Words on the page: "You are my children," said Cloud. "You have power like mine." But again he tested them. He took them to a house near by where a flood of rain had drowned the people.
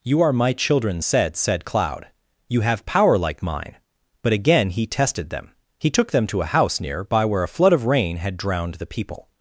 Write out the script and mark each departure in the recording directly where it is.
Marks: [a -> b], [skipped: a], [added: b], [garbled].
"You are my children," said [added: said] Cloud. "You have power like mine." But again he tested them. He took them to a house near by where a flood of rain had drowned the people.